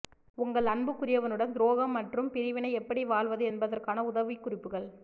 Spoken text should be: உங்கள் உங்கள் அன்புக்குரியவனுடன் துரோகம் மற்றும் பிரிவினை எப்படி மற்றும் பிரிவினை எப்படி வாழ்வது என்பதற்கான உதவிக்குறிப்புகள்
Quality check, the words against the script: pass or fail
fail